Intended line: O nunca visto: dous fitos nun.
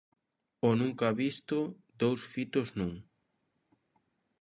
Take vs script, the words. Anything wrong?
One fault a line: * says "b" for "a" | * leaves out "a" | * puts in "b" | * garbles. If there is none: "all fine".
all fine